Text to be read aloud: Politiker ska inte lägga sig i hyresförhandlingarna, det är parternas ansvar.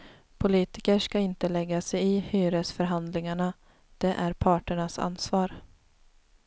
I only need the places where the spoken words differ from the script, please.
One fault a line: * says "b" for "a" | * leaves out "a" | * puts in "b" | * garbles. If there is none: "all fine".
all fine